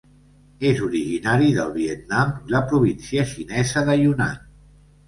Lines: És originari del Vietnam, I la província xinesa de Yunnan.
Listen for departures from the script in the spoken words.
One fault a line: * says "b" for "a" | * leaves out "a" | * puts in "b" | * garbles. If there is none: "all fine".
all fine